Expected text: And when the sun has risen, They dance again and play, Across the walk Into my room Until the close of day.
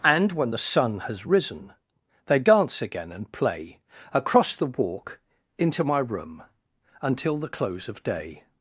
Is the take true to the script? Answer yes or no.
yes